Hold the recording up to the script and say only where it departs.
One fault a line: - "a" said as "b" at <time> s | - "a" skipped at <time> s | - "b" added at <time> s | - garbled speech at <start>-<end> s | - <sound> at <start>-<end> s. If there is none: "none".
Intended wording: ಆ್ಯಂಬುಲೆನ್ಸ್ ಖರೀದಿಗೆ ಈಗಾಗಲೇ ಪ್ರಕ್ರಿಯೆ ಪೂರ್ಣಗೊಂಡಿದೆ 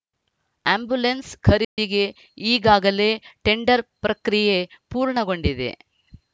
- dropout at 1.6-1.8 s
- "ಟೆಂಡರ್" added at 3.4 s